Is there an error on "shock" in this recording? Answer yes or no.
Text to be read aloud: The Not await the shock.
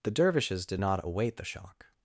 no